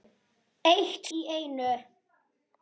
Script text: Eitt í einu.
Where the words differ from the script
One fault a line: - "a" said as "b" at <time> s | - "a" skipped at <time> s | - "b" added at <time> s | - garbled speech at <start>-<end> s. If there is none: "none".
none